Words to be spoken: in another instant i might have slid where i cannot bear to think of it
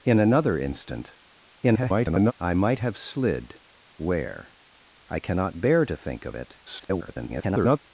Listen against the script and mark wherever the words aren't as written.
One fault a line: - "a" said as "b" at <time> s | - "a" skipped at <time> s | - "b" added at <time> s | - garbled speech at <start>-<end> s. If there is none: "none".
- garbled speech at 1.6-2.3 s
- garbled speech at 6.7-7.8 s